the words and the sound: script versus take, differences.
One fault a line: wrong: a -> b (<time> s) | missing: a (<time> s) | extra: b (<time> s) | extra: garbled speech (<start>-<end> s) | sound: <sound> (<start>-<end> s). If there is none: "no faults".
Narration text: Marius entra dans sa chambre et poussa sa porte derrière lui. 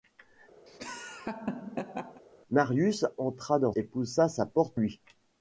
sound: laugh (0.7-2.2 s)
missing: sa chambre (3.7 s)
missing: derrière (4.8 s)